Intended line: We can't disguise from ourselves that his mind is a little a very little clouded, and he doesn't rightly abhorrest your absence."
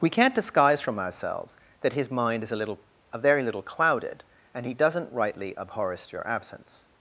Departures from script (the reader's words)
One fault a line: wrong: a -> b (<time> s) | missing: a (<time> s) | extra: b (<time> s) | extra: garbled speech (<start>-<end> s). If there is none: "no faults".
no faults